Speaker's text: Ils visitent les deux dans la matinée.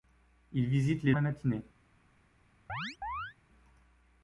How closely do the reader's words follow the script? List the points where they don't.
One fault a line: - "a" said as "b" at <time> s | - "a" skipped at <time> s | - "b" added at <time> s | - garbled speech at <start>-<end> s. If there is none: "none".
- "deux dans" skipped at 1.1 s